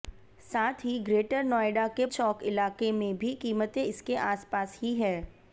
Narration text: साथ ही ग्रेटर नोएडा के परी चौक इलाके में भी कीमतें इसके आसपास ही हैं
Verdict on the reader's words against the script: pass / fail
fail